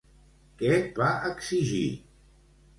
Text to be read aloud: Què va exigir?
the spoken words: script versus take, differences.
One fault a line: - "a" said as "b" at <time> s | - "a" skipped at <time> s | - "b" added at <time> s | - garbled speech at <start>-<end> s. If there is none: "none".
none